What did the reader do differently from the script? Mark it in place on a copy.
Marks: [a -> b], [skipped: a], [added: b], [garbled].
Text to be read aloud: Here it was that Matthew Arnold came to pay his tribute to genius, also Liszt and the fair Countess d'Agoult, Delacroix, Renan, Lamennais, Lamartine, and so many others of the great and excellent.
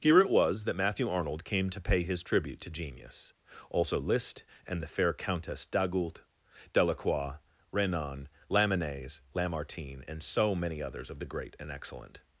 Here it was that Matthew Arnold came to pay his tribute to genius, also Liszt and the fair Countess d'Agoult, Delacroix, Renan, Lamennais, Lamartine, and so many others of the great and excellent.